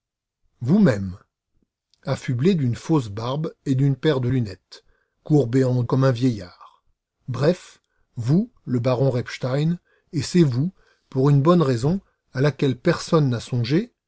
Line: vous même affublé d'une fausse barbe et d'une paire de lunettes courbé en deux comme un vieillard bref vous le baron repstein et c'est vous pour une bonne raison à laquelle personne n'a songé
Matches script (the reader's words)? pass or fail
fail